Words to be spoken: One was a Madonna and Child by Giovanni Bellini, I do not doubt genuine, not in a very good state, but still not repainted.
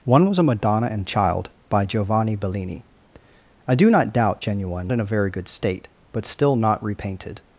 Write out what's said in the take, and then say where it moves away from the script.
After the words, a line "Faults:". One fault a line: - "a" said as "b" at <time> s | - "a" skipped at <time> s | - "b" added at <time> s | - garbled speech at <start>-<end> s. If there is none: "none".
One was a Madonna and Child by Giovanni Bellini, I do not doubt genuine, in a very good state, but still not repainted.
Faults:
- "not" skipped at 4.9 s